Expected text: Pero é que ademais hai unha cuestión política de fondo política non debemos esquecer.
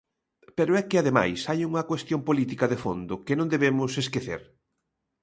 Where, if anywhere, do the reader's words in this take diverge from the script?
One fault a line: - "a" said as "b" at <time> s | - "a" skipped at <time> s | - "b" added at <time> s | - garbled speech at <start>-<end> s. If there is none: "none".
- "política" said as "que" at 3.3 s